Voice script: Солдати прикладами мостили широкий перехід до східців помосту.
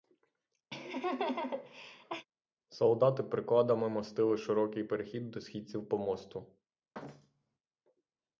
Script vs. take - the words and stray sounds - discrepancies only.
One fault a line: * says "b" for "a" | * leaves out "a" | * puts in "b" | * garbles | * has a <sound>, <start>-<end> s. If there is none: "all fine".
* has a laugh, 0.7-2.3 s
* has a thud, 6.9-7.6 s